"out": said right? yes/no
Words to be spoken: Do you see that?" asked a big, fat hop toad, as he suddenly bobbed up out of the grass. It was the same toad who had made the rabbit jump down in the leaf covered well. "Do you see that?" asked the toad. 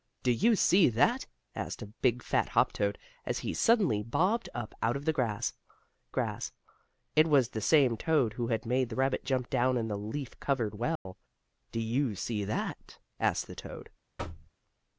yes